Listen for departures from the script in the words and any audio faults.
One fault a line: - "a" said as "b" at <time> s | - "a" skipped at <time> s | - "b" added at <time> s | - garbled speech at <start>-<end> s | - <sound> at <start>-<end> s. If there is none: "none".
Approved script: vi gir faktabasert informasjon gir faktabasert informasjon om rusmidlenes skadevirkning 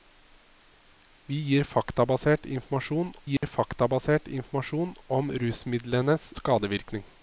- dropout at 3.4-3.4 s